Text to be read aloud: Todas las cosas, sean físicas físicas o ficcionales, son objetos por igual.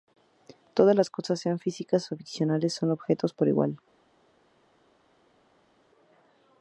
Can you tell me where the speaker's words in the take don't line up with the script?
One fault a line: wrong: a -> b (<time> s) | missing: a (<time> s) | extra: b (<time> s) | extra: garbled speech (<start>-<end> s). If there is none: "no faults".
missing: físicas (2.1 s)